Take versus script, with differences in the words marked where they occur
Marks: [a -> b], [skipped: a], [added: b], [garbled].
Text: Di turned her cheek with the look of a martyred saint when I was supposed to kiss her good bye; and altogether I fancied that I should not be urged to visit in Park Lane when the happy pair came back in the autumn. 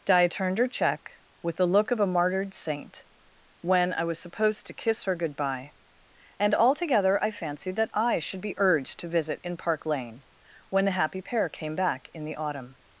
Di turned her [cheek -> check] with the look of a martyred saint when I was supposed to kiss her good bye; and altogether I fancied that I should [skipped: not] be urged to visit in Park Lane when the happy pair came back in the autumn.